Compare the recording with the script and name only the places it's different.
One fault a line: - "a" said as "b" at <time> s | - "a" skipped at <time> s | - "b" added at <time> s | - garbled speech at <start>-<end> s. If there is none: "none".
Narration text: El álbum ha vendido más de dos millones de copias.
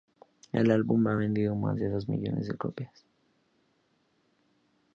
none